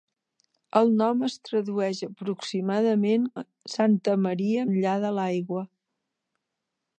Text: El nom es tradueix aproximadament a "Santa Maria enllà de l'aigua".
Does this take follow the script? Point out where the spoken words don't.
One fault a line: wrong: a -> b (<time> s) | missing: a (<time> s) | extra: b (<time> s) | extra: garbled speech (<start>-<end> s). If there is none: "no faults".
no faults